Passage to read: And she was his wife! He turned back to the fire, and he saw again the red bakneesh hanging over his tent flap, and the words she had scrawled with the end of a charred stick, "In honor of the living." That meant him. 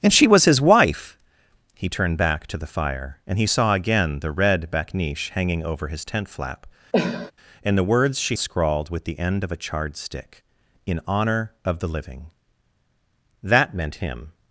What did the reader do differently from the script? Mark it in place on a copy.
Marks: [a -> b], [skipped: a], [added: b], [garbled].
And she was his wife! He turned back to the fire, and he saw again the red bakneesh hanging over his tent flap, and the words she [skipped: had] scrawled with the end of a charred stick, "In honor of the living." That meant him.